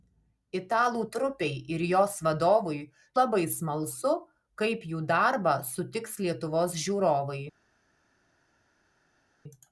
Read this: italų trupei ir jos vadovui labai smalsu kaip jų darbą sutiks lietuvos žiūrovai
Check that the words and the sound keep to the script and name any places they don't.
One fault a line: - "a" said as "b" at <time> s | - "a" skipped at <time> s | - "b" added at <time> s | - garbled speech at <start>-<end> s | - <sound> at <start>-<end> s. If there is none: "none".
none